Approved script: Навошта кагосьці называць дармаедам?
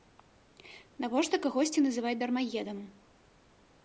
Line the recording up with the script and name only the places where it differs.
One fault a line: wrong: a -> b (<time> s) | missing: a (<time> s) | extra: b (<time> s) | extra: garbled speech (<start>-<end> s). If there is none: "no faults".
no faults